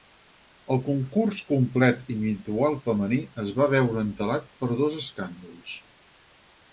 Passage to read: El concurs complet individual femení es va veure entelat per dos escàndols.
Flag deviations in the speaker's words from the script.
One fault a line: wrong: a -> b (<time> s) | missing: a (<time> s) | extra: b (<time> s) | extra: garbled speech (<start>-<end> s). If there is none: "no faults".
no faults